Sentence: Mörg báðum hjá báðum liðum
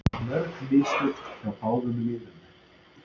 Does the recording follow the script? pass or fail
fail